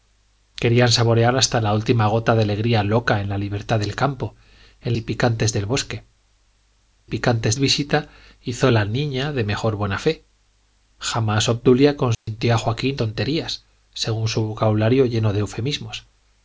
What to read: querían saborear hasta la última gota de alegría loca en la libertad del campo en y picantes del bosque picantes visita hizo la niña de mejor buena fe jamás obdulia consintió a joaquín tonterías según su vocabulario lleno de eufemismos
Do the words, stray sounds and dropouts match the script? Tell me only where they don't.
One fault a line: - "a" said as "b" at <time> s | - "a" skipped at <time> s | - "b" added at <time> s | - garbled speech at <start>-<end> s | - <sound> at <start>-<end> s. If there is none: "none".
- dropout at 12.1-12.3 s